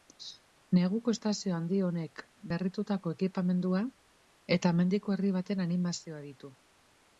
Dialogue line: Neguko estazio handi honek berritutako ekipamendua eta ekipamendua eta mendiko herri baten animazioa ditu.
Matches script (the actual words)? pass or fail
fail